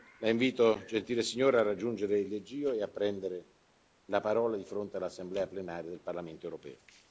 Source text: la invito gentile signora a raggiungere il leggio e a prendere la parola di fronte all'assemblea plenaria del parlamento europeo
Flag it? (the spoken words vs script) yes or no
no